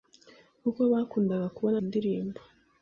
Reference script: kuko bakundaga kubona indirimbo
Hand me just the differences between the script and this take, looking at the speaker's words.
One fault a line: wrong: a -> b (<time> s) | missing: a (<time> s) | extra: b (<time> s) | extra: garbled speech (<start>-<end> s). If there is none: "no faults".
no faults